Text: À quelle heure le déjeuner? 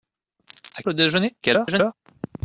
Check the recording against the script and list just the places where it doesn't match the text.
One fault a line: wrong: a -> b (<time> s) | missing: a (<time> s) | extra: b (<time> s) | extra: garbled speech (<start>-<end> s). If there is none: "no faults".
missing: quelle heure (0.8 s)
extra: garbled speech (1.4-1.9 s)